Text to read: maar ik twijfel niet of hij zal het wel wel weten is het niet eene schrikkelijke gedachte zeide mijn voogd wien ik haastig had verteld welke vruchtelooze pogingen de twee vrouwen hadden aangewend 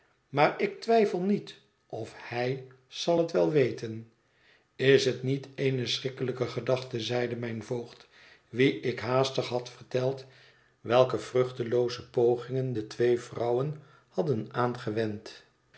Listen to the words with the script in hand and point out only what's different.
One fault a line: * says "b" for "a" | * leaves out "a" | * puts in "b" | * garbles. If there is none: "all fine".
* leaves out "wel"